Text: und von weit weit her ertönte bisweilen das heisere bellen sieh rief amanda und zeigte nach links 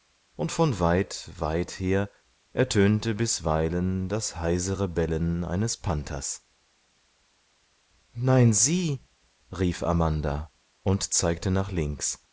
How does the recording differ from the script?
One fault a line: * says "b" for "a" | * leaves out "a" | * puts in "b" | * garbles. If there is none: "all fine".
* puts in "eines panthers nein"